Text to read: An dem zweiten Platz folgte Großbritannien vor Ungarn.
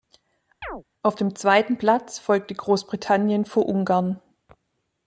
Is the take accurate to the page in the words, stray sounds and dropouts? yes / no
no